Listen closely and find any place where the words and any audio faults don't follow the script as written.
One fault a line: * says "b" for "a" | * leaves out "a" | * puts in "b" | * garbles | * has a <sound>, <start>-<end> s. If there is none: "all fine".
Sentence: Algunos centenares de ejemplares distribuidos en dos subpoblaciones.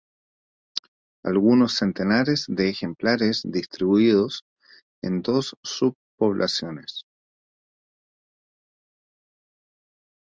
all fine